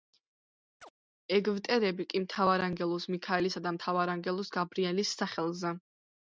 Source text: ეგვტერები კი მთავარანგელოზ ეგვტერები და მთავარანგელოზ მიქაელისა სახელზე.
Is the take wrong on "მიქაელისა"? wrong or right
wrong